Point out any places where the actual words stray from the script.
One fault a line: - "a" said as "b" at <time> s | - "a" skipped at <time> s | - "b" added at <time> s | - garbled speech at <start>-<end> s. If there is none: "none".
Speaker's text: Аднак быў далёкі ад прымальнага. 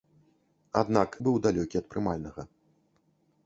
none